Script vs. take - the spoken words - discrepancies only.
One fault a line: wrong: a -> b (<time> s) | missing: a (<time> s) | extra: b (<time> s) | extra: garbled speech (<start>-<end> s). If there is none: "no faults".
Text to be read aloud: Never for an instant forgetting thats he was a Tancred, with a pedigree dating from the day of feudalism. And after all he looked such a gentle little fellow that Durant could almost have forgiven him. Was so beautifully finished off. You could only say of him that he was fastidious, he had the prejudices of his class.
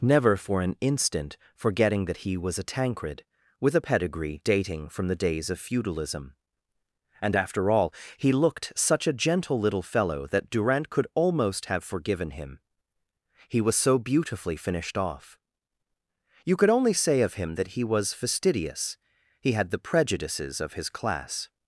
wrong: thats -> that (2.0 s)
wrong: day -> days (5.2 s)
extra: He (13.5 s)